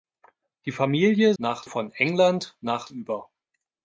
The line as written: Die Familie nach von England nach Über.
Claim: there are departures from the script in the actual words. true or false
false